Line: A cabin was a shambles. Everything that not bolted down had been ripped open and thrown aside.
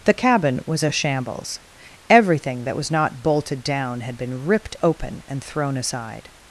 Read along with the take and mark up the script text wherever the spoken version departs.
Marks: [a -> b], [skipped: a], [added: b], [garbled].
[A -> The] cabin was a shambles. Everything that [added: was] not bolted down had been ripped open and thrown aside.